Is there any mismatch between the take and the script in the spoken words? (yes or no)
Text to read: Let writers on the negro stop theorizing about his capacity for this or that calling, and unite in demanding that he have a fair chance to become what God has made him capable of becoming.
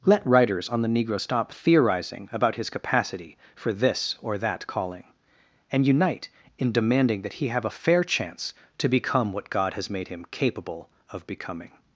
no